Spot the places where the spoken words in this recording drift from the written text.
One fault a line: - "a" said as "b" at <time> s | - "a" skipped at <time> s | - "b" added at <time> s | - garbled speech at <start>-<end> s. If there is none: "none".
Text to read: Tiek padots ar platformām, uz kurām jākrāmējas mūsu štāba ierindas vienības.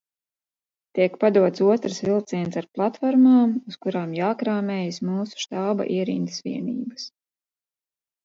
- "otrs vilciens" added at 1.7 s